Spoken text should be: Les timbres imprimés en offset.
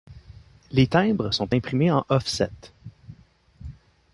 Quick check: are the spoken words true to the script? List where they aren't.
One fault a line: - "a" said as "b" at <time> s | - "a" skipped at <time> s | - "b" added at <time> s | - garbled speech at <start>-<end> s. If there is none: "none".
- "sont" added at 1.3 s